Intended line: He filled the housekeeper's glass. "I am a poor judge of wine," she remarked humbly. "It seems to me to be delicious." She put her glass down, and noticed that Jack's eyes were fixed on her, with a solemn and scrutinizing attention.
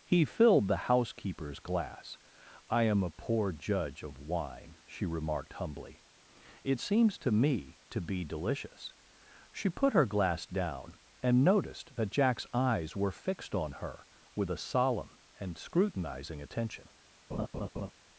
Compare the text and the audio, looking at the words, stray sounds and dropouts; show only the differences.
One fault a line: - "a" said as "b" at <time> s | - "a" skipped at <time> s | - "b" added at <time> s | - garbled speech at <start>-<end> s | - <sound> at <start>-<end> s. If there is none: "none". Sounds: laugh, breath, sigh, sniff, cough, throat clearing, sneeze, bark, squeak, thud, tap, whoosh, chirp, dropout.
- laugh at 17.3-17.9 s